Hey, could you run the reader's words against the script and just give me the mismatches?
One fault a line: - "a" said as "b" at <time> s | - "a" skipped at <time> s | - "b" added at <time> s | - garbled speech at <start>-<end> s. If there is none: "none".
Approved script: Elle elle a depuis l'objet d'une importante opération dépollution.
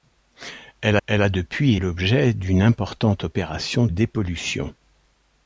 none